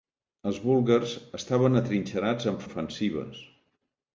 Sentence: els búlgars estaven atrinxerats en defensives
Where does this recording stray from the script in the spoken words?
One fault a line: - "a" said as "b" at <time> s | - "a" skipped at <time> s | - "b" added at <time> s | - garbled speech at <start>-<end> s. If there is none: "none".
none